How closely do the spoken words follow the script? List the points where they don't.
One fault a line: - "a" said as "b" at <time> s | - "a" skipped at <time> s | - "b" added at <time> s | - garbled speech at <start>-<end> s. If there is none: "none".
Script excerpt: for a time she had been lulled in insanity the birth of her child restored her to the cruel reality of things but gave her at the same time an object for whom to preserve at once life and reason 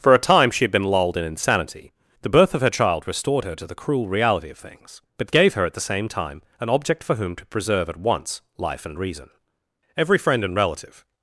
- "every friend and relative" added at 10.0 s